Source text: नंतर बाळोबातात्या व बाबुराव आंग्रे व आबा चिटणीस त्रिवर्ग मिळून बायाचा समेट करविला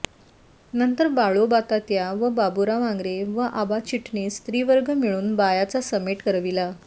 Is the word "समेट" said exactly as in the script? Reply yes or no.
yes